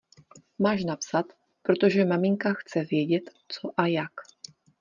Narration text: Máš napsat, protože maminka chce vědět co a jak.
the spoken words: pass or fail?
pass